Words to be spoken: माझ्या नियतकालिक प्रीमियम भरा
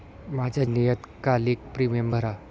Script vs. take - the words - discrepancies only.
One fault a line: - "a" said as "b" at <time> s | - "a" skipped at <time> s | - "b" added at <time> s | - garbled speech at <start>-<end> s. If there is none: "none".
none